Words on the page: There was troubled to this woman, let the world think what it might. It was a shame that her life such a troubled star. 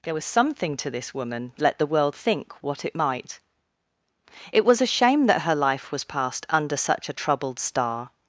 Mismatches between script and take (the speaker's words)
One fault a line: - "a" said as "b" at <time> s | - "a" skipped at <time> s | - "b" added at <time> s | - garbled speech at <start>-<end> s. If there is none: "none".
- "troubled" said as "something" at 0.2 s
- "was passed under" added at 5.9 s